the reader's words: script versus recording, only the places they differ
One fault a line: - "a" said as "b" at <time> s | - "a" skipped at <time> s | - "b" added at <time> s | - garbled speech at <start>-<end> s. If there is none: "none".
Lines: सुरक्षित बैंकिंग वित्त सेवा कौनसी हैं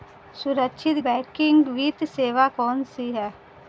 none